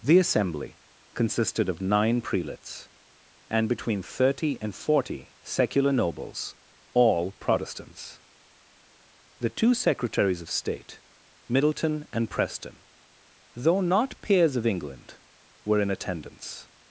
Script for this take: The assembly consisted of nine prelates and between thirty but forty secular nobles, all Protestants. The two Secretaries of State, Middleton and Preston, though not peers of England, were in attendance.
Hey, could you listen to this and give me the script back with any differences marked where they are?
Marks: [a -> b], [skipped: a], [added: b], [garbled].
The assembly consisted of nine prelates and between thirty [but -> and] forty secular nobles, all Protestants. The two Secretaries of State, Middleton and Preston, though not peers of England, were in attendance.